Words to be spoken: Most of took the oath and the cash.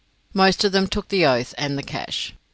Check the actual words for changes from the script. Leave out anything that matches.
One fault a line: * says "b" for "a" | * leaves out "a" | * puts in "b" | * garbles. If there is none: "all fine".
* puts in "them"